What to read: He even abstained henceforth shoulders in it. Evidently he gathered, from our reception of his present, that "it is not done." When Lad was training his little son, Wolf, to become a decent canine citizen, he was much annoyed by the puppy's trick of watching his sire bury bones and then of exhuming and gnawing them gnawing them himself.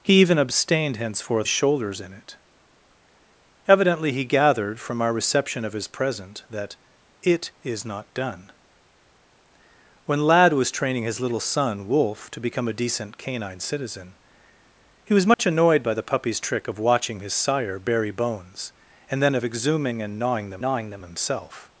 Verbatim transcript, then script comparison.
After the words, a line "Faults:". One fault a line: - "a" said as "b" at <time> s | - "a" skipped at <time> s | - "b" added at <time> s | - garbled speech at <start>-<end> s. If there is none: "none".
He even abstained henceforth shoulders in it. Evidently he gathered, from our reception of his present, that "it is not done." When Lad was training his little son, Wolf, to become a decent canine citizen, he was much annoyed by the puppy's trick of watching his sire bury bones and then of exhuming and gnawing them gnawing them himself.
Faults:
none